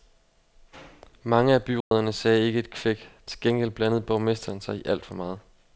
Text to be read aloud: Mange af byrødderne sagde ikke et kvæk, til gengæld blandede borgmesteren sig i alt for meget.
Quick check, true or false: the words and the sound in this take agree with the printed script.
false